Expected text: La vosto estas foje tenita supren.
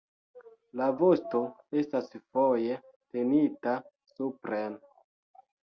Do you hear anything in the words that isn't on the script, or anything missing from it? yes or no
no